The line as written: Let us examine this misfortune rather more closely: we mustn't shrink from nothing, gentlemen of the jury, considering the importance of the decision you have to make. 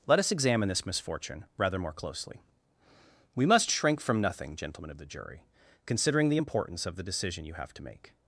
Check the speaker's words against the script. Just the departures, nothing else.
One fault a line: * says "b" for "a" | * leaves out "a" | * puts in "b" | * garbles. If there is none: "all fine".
* says "must" for "mustn't"